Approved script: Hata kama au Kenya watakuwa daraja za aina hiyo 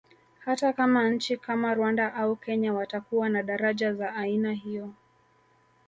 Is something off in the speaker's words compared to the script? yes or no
yes